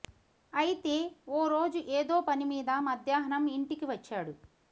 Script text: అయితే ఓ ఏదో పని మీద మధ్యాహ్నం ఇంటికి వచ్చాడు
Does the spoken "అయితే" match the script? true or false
true